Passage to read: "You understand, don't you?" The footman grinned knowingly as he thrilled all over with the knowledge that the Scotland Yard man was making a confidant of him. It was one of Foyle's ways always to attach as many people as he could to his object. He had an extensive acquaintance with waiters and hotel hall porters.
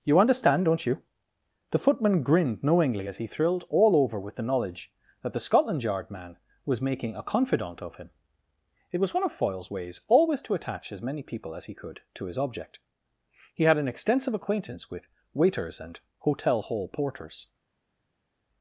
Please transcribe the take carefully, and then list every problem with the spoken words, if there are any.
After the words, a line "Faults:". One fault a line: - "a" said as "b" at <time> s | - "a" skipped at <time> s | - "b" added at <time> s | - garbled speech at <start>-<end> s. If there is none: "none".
"You understand, don't you?" The footman grinned knowingly as he thrilled all over with the knowledge that the Scotland Yard man was making a confidant of him. It was one of Foyle's ways always to attach as many people as he could to his object. He had an extensive acquaintance with waiters and hotel hall porters.
Faults:
none